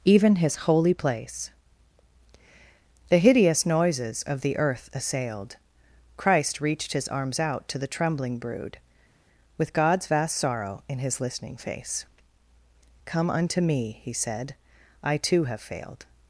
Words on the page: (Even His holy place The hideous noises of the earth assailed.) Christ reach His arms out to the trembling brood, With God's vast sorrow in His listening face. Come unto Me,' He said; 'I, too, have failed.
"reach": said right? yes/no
no